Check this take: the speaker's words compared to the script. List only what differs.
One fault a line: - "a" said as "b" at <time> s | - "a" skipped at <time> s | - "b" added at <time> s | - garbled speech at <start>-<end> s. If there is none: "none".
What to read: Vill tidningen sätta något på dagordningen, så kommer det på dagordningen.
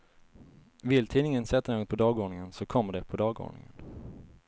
none